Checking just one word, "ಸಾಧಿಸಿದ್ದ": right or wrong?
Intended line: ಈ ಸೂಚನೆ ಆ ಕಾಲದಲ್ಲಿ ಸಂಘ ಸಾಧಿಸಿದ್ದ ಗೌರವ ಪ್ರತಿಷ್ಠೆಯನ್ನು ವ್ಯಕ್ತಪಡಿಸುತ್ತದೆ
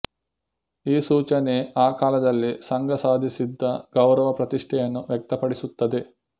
right